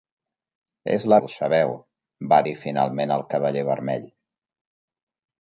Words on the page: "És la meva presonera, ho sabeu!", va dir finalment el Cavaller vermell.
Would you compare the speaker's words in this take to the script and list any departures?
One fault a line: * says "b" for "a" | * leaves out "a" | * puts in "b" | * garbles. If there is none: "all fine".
* leaves out "meva presonera"